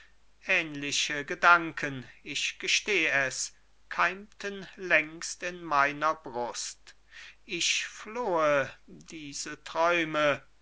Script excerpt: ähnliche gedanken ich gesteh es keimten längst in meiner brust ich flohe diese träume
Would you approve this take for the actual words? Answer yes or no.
yes